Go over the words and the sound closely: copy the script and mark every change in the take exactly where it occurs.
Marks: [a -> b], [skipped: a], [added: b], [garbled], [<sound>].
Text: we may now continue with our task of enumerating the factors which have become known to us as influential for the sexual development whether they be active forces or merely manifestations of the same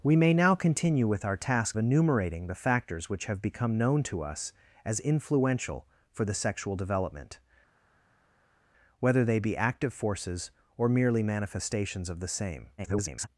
we may now continue with our task [skipped: of] enumerating the factors which have become known to us as influential for the sexual development whether they be active forces or merely manifestations of the same [garbled]